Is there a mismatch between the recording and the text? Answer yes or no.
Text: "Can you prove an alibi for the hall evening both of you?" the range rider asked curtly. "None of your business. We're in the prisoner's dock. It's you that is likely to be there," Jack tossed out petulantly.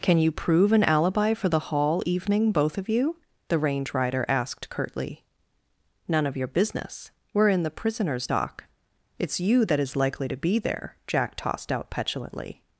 no